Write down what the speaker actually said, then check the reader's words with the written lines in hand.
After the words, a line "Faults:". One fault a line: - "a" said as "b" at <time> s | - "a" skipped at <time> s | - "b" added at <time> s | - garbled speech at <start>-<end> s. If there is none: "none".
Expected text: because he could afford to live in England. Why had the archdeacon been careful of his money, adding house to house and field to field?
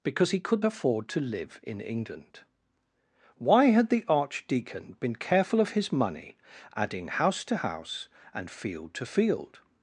because he could afford to live in England. Why had the archdeacon been careful of his money, adding house to house and field to field?
Faults:
none